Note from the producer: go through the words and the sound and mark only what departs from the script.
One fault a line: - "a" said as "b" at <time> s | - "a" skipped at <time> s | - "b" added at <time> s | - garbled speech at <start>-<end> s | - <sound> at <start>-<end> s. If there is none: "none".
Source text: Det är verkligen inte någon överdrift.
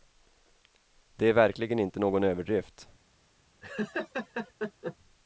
- laugh at 3.6-5.0 s